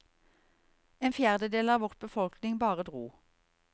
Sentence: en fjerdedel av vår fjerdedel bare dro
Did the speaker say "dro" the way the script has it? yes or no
yes